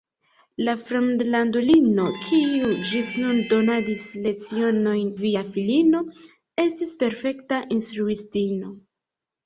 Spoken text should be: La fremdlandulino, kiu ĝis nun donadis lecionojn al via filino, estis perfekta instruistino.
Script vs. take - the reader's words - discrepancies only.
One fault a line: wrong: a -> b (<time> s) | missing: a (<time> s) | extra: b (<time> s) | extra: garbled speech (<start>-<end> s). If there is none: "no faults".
missing: al (5.1 s)